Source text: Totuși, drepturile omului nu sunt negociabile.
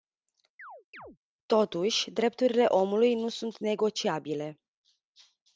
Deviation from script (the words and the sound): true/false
true